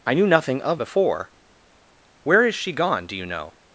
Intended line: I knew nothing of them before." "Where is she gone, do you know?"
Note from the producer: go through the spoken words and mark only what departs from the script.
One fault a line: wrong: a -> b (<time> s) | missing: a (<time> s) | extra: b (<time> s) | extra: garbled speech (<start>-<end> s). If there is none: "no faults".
missing: them (0.8 s)